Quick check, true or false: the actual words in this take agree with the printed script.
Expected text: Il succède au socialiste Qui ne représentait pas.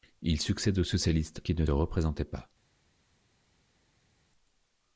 true